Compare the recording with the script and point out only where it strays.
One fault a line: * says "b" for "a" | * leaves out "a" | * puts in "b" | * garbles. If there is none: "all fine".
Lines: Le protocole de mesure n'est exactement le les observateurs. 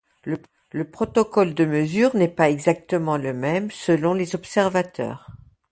* puts in "pas"
* puts in "même selon"